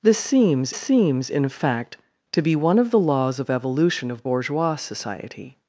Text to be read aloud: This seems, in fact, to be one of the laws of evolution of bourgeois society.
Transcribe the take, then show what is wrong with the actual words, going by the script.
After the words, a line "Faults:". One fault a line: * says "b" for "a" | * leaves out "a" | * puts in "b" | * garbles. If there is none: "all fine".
This seems seems, in fact, to be one of the laws of evolution of bourgeois society.
Faults:
* puts in "seems"